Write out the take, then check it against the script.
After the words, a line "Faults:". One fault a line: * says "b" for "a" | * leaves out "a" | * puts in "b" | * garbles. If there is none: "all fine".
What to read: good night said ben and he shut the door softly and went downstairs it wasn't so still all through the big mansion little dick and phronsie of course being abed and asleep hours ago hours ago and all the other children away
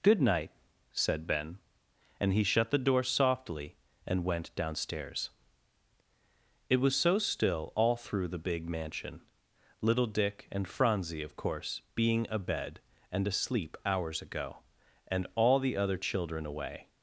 good night said ben and he shut the door softly and went downstairs it was so still all through the big mansion little dick and phronsie of course being abed and asleep hours ago and all the other children away
Faults:
* says "was" for "wasn't"
* leaves out "hours ago"